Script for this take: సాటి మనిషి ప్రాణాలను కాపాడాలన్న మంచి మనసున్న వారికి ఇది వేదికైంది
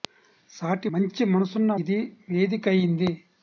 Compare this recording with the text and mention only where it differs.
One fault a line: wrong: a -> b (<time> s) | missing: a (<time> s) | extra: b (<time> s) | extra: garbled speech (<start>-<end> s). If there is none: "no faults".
missing: మనిషి ప్రాణాలను కాపాడాలన్న (0.9 s)
missing: వారికి (1.7 s)